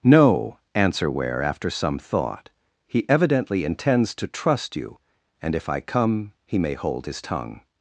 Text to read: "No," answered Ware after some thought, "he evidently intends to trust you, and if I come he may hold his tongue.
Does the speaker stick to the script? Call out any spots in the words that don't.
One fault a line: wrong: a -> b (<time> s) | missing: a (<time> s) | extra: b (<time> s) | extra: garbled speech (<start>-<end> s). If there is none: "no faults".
wrong: answered -> answer (0.7 s)